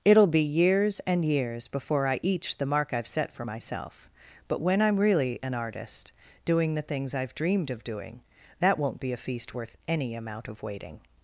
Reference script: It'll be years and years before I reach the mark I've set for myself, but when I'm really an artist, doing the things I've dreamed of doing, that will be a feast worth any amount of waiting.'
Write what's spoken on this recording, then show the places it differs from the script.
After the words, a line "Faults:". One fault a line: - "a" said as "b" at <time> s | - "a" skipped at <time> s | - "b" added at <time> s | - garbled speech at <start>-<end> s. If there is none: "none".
It'll be years and years before I each the mark I've set for myself, but when I'm really an artist, doing the things I've dreamed of doing, that won't be a feast worth any amount of waiting.'
Faults:
- "reach" said as "each" at 2.2 s
- "will" said as "won't" at 8.8 s